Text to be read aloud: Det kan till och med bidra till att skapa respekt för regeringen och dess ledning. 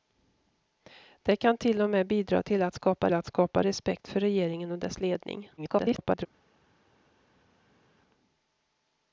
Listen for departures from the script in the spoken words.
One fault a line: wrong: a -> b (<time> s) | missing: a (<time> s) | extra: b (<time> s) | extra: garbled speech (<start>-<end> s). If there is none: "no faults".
extra: att skapa (3.1 s)
extra: garbled speech (5.6-6.3 s)